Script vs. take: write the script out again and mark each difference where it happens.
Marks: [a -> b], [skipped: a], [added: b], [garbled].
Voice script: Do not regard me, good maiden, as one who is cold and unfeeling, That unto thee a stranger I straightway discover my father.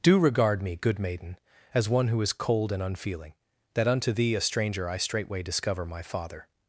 Do [skipped: not] regard me, good maiden, as one who is cold and unfeeling, That unto thee a stranger I straightway discover my father.